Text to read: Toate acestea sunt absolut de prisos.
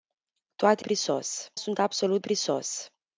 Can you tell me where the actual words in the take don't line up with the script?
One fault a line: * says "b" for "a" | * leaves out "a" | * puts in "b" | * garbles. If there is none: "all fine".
* says "prisos" for "acestea"
* leaves out "de"